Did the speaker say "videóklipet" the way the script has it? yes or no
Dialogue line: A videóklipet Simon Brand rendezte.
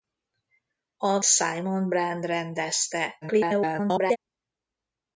no